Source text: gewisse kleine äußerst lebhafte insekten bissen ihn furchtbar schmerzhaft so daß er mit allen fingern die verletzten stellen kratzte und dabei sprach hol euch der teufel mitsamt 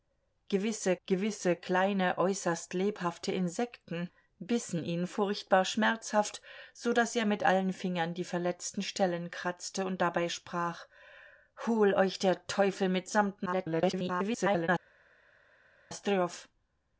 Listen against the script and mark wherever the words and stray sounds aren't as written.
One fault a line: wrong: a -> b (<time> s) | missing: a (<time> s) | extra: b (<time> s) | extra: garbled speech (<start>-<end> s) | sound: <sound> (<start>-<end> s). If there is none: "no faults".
extra: gewisse (1.1 s)
extra: garbled speech (13.5-14.7 s)